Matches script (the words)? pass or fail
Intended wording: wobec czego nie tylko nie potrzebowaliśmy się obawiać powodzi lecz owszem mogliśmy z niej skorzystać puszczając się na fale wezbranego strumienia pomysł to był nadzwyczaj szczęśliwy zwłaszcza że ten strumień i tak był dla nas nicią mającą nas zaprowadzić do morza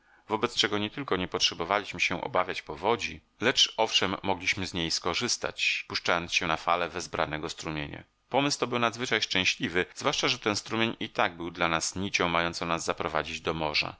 pass